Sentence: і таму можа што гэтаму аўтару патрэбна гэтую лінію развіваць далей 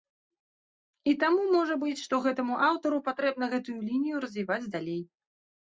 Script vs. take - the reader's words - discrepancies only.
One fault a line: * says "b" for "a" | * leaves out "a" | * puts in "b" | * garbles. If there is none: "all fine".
* puts in "быць"